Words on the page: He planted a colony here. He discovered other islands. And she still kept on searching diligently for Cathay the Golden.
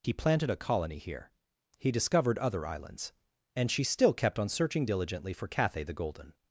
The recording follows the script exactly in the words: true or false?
true